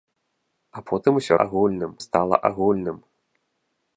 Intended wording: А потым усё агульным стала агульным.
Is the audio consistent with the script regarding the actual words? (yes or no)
yes